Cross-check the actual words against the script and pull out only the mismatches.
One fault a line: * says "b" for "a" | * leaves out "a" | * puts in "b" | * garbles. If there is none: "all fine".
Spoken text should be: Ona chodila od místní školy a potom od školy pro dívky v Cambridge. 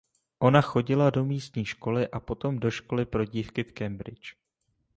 * says "do" for "od"
* says "do" for "od"